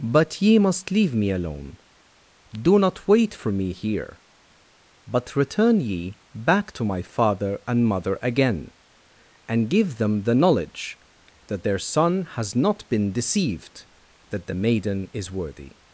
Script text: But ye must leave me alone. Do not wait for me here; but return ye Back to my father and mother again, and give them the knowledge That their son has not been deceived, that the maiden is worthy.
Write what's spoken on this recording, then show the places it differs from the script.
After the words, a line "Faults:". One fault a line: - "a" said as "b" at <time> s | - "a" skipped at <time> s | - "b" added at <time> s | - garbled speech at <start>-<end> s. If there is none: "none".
But ye must leave me alone. Do not wait for me here; but return ye Back to my father and mother again, and give them the knowledge That their son has not been deceived, that the maiden is worthy.
Faults:
none